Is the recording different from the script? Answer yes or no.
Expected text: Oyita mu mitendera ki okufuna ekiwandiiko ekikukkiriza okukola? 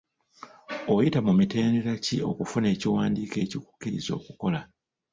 no